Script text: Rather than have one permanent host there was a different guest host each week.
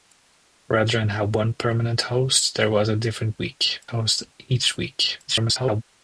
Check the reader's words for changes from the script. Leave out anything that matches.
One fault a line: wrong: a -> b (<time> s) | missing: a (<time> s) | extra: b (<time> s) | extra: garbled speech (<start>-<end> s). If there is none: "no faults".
wrong: guest -> week (3.4 s)
extra: garbled speech (5.3-5.8 s)